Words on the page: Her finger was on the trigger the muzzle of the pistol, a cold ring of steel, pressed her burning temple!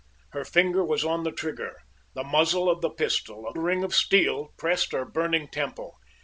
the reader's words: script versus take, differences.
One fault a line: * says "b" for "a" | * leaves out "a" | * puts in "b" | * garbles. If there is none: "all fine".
* leaves out "cold"